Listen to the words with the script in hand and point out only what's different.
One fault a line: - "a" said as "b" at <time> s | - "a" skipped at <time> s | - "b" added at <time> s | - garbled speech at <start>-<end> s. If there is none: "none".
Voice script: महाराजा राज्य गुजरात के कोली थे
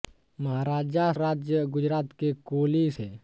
none